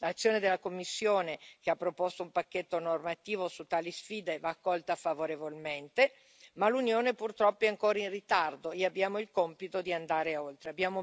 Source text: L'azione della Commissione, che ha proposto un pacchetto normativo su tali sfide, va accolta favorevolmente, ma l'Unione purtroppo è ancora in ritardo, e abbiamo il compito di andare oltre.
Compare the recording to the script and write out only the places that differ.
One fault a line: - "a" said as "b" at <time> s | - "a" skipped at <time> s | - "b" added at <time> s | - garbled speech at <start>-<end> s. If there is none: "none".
none